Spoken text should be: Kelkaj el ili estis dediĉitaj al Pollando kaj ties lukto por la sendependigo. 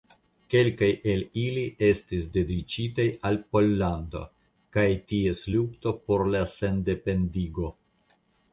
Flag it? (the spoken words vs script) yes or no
no